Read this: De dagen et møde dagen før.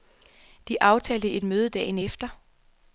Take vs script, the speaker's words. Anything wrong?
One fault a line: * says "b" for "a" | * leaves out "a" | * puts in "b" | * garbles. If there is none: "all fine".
* says "aftalte" for "dagen"
* says "efter" for "før"